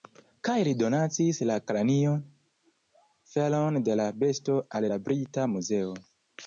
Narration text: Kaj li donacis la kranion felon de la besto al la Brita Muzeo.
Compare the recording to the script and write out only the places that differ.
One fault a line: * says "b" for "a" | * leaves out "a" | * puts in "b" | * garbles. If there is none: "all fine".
all fine